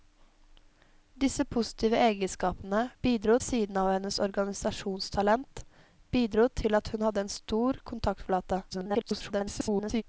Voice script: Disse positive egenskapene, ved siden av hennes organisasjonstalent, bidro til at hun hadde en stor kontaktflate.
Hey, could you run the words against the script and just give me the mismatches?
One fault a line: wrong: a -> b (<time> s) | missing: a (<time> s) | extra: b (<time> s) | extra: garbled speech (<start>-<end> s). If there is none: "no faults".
wrong: ved -> bidro (3.0 s)
extra: garbled speech (8.7-10.0 s)